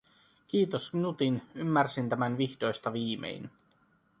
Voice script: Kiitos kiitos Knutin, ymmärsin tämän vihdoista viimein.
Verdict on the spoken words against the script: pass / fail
fail